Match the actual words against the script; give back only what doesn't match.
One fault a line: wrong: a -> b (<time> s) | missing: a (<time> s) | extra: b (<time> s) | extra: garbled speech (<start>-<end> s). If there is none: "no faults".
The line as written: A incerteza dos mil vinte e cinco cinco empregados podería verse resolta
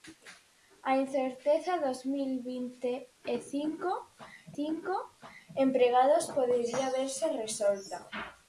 no faults